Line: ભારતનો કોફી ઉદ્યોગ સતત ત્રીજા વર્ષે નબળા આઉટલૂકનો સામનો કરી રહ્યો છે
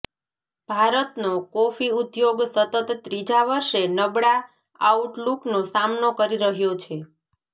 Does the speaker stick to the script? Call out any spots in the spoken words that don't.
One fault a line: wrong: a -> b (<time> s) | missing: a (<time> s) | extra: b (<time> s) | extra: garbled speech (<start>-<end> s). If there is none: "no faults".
no faults